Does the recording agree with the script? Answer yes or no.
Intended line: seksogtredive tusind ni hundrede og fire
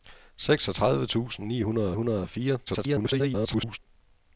no